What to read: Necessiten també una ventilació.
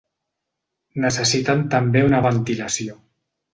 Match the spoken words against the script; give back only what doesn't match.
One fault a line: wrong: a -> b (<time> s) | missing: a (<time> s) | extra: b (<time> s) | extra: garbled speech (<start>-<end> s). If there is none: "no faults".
no faults